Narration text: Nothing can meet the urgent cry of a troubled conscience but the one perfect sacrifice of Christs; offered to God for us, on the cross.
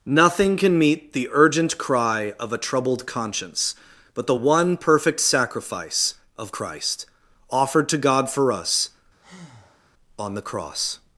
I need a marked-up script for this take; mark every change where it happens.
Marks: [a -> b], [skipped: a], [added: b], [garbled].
Nothing can meet the urgent cry of a troubled conscience but the one perfect sacrifice of [Christs; -> Christ] offered to God for us, on the cross.